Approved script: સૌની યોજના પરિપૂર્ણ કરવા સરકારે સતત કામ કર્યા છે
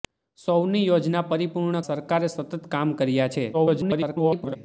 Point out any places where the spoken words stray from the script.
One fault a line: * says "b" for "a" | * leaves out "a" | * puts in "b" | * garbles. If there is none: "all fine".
* leaves out "કરવા"
* garbles